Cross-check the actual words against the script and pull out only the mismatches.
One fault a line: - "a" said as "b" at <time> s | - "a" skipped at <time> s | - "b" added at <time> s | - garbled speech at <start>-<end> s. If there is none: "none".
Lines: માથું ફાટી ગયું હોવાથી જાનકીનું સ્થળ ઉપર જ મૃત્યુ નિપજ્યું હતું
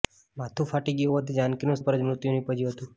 - "સ્થળ" skipped at 1.8 s